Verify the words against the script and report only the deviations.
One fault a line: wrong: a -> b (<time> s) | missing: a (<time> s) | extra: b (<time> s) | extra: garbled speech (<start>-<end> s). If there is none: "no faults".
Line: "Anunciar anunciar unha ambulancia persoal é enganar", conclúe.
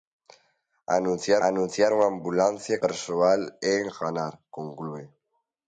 no faults